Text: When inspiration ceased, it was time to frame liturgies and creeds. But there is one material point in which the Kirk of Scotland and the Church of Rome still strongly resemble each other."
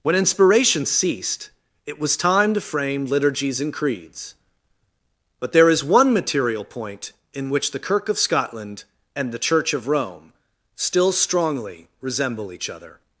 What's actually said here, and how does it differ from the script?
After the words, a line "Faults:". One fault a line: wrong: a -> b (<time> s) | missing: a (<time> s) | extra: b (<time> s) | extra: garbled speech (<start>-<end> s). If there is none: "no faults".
When inspiration ceased, it was time to frame liturgies and creeds. But there is one material point in which the Kirk of Scotland and the Church of Rome still strongly resemble each other."
Faults:
no faults